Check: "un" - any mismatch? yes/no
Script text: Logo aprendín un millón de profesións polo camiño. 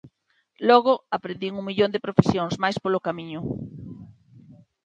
no